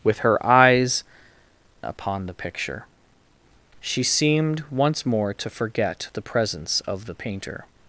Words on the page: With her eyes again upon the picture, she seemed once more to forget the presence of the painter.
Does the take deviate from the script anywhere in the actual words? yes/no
yes